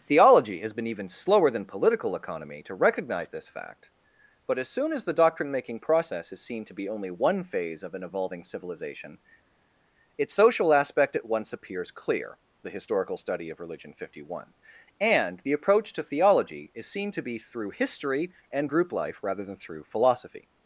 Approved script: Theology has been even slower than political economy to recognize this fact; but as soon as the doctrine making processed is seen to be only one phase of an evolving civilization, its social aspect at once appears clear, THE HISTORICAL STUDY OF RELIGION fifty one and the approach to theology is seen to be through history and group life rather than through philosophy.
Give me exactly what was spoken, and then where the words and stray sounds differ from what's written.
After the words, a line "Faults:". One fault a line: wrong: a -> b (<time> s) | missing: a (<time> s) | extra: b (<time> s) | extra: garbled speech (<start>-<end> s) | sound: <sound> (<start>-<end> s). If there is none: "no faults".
Theology has been even slower than political economy to recognize this fact; but as soon as the doctrine making process is seen to be only one phase of an evolving civilization, its social aspect at once appears clear, THE HISTORICAL STUDY OF RELIGION fifty one and the approach to theology is seen to be through history and group life rather than through philosophy.
Faults:
wrong: processed -> process (5.8 s)